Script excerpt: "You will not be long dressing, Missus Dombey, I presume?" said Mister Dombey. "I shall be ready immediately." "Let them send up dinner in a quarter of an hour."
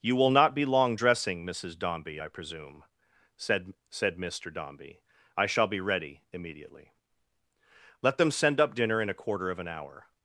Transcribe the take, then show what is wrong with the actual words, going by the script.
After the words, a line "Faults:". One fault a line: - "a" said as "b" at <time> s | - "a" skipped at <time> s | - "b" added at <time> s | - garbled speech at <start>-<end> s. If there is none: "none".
"You will not be long dressing, Missus Dombey, I presume?" said said Mister Dombey. "I shall be ready immediately." "Let them send up dinner in a quarter of an hour."
Faults:
- "said" added at 3.9 s